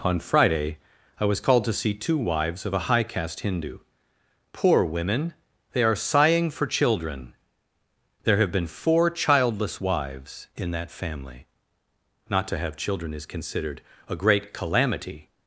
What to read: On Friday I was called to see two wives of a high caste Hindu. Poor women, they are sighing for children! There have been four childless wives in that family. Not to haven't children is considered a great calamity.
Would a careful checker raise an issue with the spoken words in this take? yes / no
yes